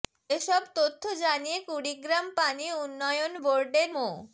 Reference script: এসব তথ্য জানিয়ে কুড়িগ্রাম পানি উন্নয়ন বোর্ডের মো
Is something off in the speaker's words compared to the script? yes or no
no